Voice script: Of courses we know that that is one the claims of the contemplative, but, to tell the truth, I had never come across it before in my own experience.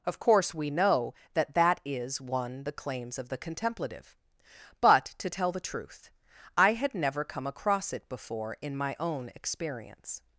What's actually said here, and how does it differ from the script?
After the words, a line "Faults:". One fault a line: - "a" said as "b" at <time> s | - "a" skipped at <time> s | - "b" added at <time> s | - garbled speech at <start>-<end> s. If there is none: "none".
Of course we know that that is one the claims of the contemplative, but, to tell the truth, I had never come across it before in my own experience.
Faults:
- "courses" said as "course" at 0.2 s